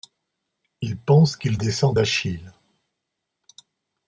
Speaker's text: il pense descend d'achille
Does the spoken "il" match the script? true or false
true